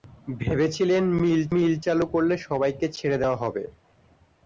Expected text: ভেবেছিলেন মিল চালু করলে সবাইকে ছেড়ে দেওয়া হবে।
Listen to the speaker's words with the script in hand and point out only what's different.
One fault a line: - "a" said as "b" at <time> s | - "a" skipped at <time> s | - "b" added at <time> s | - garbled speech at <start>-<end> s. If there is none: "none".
- "মিল" added at 1.5 s